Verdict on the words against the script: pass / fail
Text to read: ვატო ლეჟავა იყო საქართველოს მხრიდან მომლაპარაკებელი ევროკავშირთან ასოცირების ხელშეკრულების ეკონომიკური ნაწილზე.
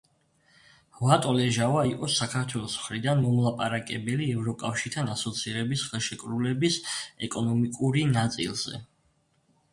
pass